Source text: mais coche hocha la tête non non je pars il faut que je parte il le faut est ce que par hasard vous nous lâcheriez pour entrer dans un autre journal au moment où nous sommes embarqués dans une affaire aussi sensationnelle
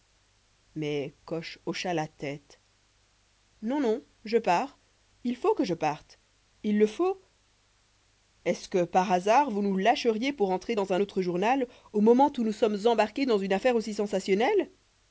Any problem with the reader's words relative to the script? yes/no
no